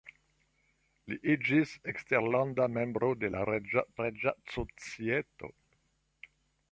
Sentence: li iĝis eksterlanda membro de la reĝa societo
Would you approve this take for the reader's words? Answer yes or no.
no